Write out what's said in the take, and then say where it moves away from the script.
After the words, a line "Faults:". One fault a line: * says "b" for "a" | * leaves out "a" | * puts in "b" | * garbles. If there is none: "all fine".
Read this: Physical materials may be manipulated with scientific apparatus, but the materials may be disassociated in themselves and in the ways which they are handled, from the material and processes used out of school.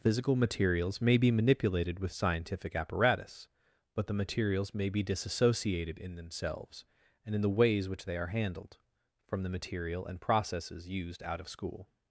Physical materials may be manipulated with scientific apparatus, but the materials may be disassociated in themselves and in the ways which they are handled, from the material and processes used out of school.
Faults:
all fine